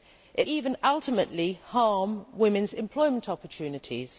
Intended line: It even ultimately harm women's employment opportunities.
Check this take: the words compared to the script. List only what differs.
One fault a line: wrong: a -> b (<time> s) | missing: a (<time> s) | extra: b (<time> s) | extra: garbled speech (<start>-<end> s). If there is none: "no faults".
no faults